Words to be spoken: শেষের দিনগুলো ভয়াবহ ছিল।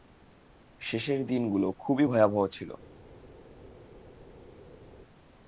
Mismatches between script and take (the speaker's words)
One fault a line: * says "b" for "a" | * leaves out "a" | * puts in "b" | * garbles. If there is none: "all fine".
* puts in "খুবই"